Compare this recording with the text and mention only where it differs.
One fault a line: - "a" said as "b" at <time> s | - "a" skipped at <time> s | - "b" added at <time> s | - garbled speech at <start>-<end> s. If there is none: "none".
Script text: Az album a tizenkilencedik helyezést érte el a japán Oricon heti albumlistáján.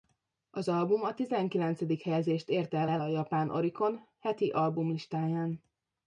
- "el" added at 2.9 s